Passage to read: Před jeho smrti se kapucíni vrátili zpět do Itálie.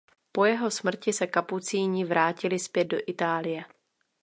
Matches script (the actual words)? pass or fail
fail